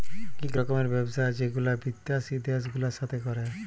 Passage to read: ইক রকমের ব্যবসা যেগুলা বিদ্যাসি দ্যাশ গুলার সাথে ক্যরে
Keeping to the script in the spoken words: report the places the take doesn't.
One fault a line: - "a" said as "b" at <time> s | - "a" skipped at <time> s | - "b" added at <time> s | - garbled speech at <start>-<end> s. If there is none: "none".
none